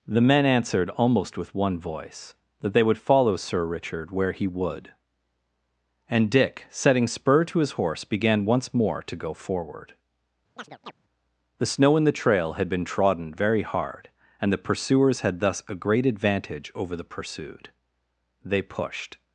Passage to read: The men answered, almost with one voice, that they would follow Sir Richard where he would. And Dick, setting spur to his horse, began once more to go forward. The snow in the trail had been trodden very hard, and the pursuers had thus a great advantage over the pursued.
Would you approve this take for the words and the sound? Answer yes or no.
no